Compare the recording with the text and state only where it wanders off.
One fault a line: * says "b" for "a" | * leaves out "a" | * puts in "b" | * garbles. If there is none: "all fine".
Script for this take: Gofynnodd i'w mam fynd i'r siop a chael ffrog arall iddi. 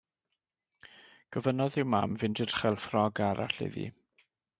* leaves out "siop"